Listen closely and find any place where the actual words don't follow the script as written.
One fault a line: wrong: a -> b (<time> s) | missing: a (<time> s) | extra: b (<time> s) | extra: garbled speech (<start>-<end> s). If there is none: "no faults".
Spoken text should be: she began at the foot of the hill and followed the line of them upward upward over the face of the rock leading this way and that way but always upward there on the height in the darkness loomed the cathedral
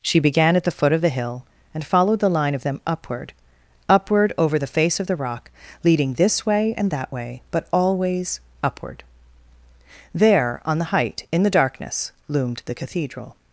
no faults